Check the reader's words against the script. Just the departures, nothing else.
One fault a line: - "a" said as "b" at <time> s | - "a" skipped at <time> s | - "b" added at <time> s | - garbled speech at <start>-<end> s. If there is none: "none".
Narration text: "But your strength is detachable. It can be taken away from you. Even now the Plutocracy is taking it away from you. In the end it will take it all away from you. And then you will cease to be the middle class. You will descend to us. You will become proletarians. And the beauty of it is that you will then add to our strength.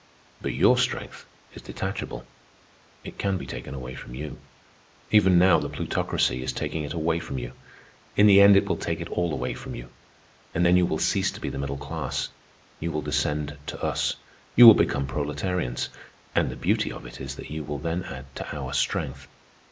none